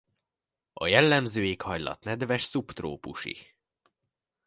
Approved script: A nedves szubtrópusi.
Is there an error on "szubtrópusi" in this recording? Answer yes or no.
no